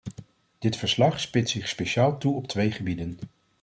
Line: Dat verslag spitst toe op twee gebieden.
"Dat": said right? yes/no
no